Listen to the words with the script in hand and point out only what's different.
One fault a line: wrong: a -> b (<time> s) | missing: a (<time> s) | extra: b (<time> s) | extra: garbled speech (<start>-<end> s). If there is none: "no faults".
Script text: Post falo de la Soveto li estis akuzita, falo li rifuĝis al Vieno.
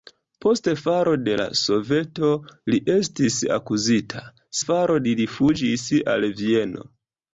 no faults